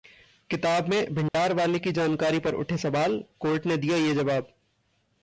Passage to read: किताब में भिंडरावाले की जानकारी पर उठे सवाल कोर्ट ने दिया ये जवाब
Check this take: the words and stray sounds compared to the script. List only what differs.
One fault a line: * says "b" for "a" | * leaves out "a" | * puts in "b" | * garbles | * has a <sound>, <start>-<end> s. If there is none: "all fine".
* has a dropout, 1.3-1.3 s